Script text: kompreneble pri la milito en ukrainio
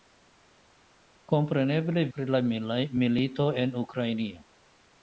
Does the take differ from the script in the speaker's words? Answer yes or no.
no